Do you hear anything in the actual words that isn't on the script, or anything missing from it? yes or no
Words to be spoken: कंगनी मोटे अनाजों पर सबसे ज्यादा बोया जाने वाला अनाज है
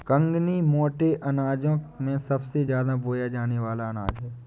yes